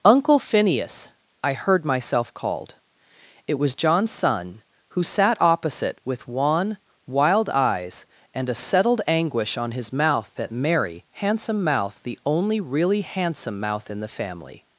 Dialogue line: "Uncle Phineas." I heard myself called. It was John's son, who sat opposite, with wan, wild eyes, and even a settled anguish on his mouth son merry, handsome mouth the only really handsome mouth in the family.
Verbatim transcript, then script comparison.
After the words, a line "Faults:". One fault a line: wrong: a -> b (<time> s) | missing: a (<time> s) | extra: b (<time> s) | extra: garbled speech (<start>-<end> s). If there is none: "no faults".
"Uncle Phineas." I heard myself called. It was John's son, who sat opposite, with wan, wild eyes, and a settled anguish on his mouth that merry, handsome mouth the only really handsome mouth in the family.
Faults:
missing: even (8.5 s)
wrong: son -> that (10.4 s)